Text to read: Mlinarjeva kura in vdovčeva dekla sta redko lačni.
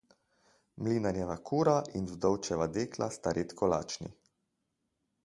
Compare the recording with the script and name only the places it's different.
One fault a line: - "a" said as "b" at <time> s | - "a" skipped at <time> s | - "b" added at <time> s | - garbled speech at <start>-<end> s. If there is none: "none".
none